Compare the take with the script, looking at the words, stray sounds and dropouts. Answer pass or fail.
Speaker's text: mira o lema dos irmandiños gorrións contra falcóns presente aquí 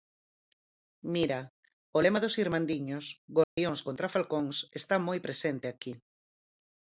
fail